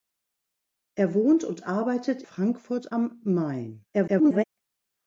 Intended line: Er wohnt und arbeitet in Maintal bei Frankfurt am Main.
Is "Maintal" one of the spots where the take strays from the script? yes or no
yes